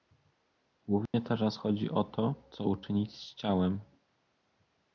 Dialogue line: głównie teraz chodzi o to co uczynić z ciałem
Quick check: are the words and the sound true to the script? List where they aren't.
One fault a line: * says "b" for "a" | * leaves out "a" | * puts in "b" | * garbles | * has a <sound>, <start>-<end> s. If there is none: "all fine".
* has a dropout, 1.1-1.1 s